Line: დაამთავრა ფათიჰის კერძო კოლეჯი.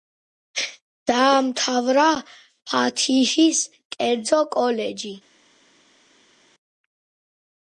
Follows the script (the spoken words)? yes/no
yes